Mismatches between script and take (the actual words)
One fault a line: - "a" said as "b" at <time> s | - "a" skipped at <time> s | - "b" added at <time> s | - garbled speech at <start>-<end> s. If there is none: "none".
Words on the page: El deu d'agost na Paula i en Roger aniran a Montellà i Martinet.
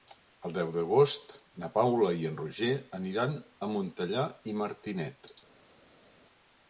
none